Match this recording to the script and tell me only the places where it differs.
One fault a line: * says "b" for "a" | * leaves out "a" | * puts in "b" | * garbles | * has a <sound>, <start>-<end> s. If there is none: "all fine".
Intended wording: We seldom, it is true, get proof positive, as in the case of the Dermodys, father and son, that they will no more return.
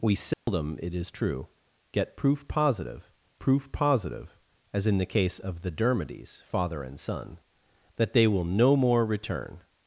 * has a dropout, 0.3-0.5 s
* puts in "proof positive"